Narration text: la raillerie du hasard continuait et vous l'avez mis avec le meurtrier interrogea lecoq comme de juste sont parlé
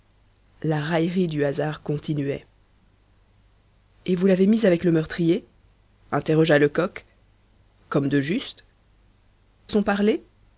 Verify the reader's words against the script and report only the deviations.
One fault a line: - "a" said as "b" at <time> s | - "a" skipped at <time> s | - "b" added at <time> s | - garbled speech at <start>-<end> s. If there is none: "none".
none